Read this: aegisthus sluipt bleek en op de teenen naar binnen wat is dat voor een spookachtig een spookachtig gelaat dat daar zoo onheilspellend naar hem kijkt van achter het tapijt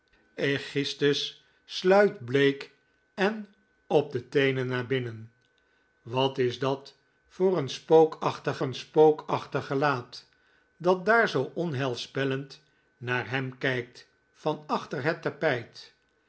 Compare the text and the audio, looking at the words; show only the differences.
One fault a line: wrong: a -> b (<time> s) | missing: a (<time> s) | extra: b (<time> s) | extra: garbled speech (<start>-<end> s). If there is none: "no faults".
no faults